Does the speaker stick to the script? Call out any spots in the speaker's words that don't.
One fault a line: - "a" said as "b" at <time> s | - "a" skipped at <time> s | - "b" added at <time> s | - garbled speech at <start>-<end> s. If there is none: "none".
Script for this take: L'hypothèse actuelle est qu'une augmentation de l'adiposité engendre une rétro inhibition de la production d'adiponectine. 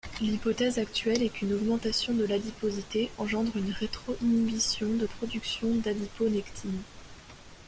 - "la" skipped at 5.0 s